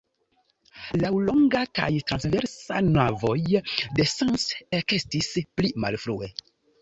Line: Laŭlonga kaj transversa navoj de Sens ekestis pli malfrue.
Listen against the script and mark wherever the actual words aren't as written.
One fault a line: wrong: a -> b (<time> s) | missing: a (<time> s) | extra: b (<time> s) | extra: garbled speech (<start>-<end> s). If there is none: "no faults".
no faults